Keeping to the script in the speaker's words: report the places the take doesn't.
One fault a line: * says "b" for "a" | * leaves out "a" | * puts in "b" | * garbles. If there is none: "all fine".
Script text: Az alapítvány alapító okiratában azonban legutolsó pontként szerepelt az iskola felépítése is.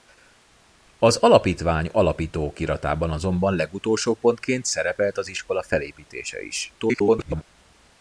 * garbles